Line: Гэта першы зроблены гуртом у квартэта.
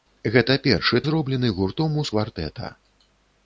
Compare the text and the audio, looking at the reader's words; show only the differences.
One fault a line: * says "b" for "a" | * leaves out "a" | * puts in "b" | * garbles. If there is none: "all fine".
all fine